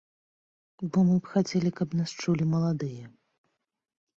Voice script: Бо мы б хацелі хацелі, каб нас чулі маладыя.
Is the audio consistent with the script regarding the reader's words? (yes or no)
no